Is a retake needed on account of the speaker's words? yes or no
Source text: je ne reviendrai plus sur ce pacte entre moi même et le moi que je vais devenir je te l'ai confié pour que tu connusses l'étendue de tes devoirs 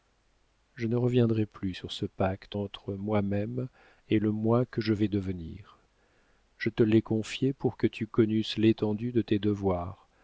no